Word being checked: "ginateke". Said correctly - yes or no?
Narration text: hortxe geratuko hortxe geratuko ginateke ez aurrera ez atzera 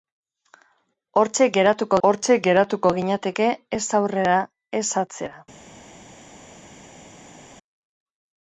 yes